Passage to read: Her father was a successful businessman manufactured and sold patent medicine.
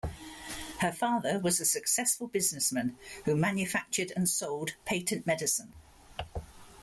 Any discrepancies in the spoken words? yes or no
yes